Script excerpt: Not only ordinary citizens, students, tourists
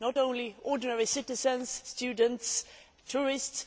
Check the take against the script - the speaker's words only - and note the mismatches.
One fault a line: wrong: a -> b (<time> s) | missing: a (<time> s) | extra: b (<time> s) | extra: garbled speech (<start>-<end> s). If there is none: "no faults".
no faults